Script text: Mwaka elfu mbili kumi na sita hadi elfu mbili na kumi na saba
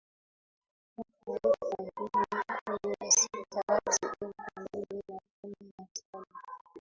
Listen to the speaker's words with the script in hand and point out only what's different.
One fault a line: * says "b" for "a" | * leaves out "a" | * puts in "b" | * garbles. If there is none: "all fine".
all fine